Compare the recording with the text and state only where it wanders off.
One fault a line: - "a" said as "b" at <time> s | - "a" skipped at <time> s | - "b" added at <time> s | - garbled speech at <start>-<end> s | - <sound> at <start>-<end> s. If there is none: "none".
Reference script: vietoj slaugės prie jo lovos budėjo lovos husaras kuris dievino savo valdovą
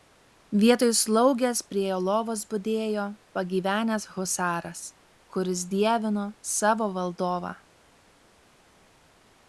- "lovos" said as "pagyvenęs" at 3.4 s